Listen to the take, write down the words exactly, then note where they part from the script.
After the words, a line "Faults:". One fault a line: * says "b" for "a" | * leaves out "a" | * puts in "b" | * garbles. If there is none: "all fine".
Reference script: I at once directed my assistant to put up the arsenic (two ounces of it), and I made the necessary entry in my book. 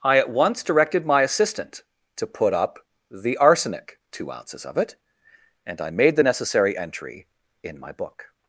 I at once directed my assistant to put up the arsenic (two ounces of it), and I made the necessary entry in my book.
Faults:
all fine